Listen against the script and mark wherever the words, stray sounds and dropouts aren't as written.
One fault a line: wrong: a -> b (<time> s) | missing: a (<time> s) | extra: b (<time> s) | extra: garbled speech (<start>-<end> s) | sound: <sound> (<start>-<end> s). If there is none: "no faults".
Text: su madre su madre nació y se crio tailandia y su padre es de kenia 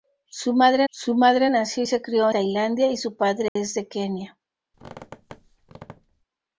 sound: dropout (3.5-3.6 s)
sound: squeak (4.7-6.3 s)